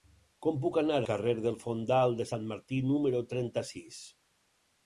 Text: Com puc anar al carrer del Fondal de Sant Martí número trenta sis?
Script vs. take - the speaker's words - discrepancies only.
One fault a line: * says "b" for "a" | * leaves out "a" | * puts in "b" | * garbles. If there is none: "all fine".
* leaves out "al"